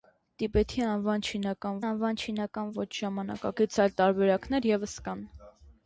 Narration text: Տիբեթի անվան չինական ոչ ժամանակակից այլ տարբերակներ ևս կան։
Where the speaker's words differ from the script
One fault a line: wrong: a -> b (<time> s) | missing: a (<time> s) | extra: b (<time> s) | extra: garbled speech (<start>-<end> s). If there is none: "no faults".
extra: անվան չինական (1.9 s)